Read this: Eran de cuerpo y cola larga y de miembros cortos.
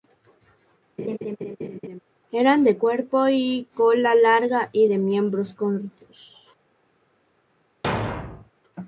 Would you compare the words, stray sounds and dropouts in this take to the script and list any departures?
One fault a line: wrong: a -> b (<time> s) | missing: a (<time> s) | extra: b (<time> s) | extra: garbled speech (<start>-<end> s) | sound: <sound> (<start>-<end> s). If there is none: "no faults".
sound: laugh (1.0-2.0 s)
sound: thud (7.8-8.5 s)